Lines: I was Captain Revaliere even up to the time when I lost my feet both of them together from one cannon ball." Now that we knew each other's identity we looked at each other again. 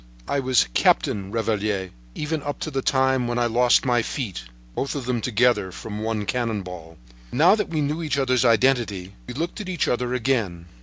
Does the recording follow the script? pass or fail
pass